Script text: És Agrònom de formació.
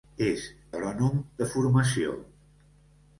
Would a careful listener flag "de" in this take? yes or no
no